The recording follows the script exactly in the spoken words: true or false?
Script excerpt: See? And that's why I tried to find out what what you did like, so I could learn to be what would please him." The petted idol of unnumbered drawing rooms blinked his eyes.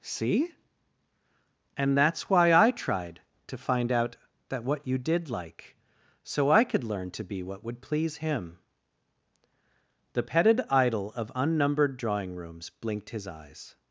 false